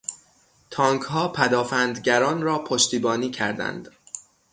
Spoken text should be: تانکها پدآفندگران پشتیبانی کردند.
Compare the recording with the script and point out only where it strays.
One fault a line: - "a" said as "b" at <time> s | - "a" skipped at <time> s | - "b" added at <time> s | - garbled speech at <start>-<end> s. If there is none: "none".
- "را" added at 2.4 s